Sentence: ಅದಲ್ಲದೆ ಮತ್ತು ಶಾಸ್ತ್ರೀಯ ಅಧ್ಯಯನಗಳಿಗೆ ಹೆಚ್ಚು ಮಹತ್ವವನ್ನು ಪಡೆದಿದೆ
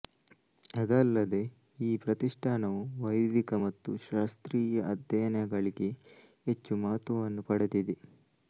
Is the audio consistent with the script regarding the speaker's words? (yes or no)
no